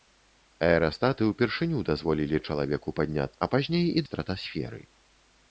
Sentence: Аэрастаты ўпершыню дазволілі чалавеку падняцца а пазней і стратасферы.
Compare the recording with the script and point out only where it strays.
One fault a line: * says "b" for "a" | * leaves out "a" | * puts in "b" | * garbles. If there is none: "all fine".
all fine